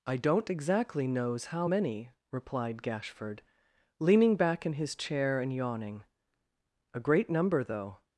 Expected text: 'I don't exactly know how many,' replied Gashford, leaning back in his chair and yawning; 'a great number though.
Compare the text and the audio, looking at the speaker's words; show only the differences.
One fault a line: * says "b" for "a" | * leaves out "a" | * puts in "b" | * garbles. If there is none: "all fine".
* says "knows" for "know"